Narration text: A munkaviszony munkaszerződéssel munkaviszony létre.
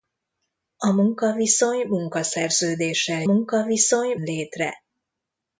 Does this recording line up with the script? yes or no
yes